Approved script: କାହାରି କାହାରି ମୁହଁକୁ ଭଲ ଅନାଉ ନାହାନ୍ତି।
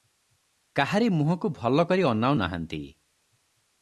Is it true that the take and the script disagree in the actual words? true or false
true